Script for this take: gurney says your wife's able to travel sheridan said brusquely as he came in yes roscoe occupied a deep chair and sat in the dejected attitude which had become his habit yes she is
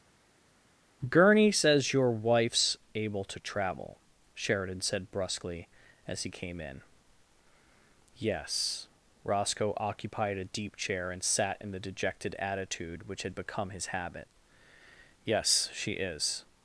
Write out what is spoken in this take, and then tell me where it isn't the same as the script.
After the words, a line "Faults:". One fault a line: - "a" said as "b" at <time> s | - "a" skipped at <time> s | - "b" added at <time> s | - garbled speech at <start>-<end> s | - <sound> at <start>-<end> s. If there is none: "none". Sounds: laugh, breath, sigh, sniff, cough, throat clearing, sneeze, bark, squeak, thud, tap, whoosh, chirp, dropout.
gurney says your wife's able to travel sheridan said brusquely as he came in yes roscoe occupied a deep chair and sat in the dejected attitude which had become his habit yes she is
Faults:
none